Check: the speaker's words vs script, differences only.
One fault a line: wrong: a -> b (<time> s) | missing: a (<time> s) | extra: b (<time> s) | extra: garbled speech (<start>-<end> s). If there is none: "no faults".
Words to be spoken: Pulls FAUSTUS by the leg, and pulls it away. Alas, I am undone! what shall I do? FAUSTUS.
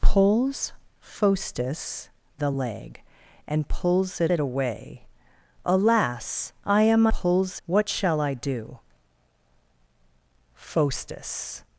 missing: by (2.1 s)
extra: it (4.3 s)
wrong: undone -> pulls (7.1 s)